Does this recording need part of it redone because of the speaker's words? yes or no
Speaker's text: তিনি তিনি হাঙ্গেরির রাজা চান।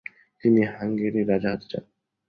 yes